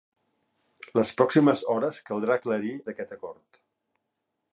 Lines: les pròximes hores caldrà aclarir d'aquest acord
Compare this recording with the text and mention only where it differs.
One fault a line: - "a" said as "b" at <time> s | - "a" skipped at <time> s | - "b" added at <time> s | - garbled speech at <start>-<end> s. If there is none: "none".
none